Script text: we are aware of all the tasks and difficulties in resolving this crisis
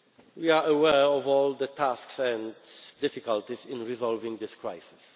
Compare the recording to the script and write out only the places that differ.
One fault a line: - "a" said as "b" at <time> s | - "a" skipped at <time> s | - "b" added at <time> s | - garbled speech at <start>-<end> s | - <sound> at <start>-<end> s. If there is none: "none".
none